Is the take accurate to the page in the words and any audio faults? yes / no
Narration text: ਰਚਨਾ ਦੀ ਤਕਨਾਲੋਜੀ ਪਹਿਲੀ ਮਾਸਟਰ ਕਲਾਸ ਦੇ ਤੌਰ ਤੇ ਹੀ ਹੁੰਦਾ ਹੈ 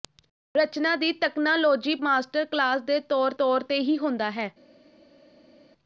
no